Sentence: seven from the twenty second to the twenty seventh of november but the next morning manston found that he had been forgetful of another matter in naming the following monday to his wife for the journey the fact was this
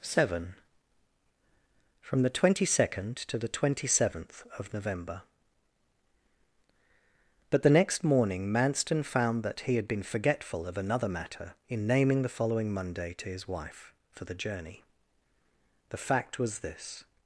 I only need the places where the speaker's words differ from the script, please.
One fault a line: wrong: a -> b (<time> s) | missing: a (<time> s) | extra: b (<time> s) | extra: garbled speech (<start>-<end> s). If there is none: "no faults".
no faults